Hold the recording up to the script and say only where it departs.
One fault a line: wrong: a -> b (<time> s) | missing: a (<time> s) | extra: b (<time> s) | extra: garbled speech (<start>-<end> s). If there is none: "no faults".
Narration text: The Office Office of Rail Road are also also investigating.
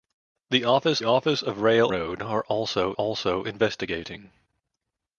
no faults